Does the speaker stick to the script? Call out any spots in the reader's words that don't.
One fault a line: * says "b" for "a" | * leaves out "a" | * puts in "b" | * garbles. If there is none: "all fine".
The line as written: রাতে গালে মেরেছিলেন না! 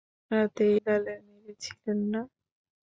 all fine